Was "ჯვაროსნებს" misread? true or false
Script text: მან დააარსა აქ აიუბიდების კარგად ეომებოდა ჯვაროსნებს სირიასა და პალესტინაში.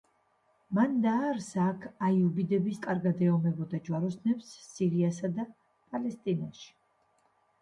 false